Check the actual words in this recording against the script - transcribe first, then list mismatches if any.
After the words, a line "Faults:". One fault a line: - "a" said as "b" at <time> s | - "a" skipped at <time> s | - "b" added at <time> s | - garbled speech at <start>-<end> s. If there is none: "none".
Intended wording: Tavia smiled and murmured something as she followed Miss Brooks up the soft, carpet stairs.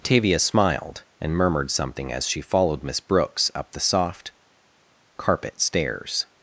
Tavia smiled and murmured something as she followed Miss Brooks up the soft, carpet stairs.
Faults:
none